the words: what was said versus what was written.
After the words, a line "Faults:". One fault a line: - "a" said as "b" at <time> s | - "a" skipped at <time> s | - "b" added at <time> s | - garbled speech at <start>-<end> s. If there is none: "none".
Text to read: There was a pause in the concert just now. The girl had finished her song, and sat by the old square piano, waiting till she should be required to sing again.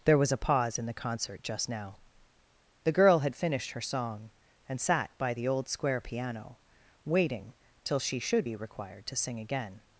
There was a pause in the concert just now. The girl had finished her song, and sat by the old square piano, waiting till she should be required to sing again.
Faults:
none